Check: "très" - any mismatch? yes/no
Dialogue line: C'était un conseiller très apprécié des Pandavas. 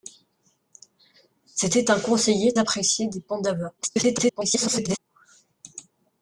yes